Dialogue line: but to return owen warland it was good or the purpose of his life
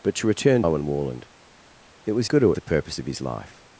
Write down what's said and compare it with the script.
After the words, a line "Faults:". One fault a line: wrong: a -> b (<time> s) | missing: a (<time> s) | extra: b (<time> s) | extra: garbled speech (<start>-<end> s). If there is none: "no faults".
but to return owen warland it was good or the purpose of his life
Faults:
no faults